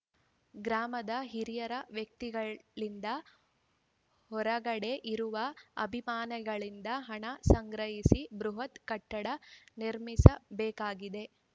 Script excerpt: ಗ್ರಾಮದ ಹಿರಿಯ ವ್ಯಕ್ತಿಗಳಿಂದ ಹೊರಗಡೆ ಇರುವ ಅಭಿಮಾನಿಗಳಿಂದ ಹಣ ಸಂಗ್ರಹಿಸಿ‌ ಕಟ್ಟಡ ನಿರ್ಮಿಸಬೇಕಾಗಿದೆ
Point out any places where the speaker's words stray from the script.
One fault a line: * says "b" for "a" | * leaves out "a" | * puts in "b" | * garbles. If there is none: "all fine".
* puts in "ಬೃಹತ್"